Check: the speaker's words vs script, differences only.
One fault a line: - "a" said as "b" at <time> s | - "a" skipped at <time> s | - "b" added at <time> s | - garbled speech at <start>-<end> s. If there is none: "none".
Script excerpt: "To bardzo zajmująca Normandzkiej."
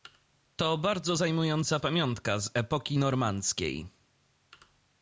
- "pamiątka z epoki" added at 1.8 s